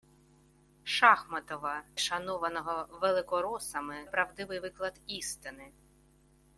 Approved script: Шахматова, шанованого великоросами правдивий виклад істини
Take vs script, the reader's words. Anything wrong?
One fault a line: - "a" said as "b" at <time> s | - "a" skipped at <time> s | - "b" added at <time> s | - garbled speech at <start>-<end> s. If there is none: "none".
none